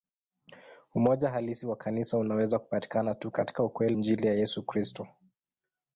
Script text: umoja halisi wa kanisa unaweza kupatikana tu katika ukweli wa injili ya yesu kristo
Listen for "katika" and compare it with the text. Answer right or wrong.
right